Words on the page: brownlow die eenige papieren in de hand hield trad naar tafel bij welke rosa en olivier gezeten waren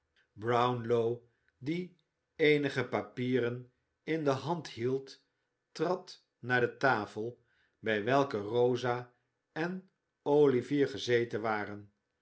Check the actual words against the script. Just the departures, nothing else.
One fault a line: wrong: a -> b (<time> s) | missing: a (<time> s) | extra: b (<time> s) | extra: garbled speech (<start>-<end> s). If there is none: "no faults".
extra: de (6.6 s)